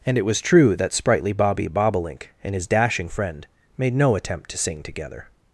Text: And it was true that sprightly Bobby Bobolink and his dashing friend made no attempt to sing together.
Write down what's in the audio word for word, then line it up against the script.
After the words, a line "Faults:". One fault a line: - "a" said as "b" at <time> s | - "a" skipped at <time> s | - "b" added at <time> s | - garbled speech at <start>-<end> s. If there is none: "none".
And it was true that sprightly Bobby Bobolink and his dashing friend made no attempt to sing together.
Faults:
none